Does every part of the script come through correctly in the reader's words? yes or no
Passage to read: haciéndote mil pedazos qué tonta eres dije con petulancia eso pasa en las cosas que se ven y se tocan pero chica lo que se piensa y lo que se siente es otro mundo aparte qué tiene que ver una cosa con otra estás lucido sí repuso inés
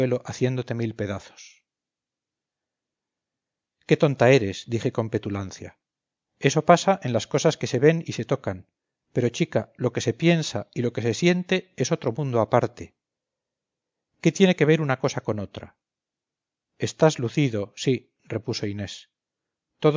yes